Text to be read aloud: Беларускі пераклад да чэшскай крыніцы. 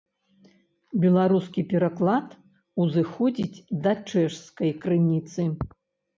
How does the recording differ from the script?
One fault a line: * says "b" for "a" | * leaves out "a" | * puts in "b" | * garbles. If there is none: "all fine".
* puts in "узыходзіць"